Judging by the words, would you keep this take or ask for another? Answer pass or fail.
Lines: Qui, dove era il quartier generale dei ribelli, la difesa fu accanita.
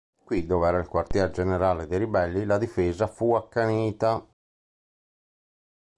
pass